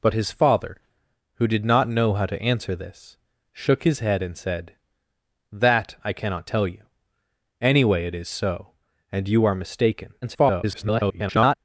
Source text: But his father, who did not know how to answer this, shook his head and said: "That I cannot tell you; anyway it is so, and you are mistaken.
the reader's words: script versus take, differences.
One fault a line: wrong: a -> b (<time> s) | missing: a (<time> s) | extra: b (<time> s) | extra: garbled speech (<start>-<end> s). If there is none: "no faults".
extra: garbled speech (10.2-11.5 s)